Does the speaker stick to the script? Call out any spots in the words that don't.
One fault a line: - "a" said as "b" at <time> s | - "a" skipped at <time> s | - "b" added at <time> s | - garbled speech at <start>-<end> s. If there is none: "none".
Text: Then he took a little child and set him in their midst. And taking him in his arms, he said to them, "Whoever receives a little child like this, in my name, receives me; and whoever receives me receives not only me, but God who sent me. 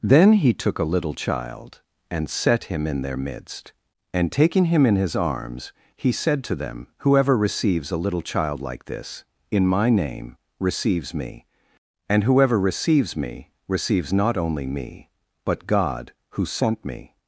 none